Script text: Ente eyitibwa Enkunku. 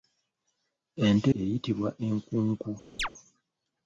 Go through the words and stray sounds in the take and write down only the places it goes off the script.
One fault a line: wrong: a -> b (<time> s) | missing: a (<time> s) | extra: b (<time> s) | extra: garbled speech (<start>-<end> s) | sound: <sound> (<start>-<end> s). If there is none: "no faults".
sound: chirp (3.0-3.1 s)